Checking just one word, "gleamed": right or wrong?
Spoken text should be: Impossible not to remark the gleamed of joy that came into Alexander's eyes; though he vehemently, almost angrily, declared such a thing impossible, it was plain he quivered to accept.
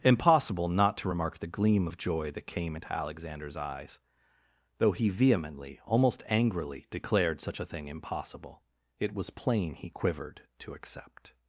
wrong